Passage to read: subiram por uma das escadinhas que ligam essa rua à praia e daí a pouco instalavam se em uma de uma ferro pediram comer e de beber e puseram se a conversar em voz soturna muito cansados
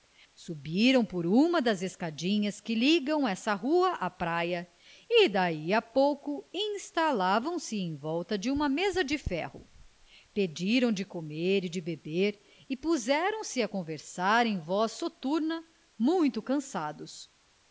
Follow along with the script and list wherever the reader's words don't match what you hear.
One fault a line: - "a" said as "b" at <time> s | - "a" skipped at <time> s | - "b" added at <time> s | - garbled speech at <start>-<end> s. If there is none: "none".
- "uma" said as "volta" at 8.0 s
- "mesa de" added at 8.7 s
- "de" added at 10.9 s